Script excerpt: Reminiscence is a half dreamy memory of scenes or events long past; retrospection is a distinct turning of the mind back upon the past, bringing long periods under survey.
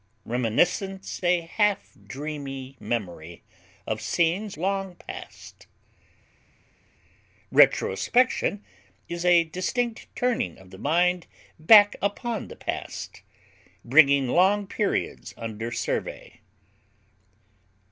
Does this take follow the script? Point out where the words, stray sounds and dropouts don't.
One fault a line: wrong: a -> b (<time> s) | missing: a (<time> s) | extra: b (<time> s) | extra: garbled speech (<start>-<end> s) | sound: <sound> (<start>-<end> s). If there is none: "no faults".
missing: is (1.2 s)
missing: or events (4.6 s)